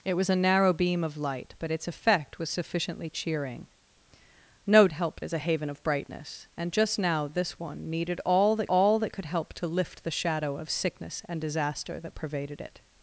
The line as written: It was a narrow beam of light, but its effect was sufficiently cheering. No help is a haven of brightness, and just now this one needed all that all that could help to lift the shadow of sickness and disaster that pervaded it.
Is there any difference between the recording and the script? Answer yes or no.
no